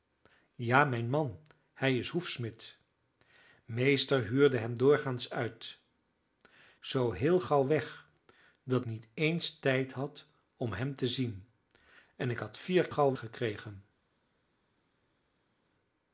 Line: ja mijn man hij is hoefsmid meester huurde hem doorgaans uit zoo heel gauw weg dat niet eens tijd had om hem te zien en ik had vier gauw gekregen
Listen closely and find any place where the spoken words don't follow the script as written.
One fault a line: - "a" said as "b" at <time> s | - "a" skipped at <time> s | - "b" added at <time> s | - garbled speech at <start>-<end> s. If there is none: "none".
none